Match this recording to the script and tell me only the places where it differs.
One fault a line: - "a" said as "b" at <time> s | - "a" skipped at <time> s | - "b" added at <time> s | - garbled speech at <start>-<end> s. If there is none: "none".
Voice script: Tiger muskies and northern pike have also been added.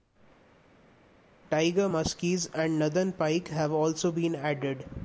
none